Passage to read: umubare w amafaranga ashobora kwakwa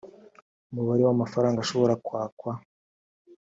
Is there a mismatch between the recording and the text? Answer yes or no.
no